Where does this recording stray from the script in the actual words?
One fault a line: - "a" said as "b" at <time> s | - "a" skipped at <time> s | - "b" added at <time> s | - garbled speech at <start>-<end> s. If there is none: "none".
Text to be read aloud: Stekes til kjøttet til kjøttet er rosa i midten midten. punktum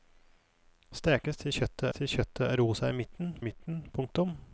none